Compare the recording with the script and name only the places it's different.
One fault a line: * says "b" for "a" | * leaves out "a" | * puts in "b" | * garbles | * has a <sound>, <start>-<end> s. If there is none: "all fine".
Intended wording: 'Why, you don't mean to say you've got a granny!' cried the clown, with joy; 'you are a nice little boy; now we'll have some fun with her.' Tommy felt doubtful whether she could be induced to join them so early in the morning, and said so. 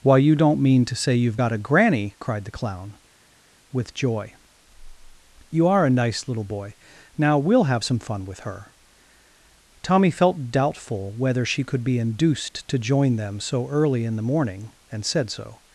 all fine